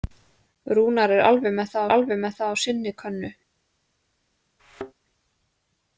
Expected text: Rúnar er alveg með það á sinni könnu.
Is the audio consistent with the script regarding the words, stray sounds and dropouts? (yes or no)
no